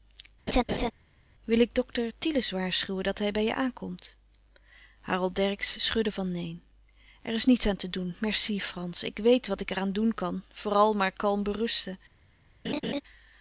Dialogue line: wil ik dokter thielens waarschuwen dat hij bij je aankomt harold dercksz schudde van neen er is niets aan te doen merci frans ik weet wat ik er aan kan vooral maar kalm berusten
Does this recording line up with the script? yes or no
no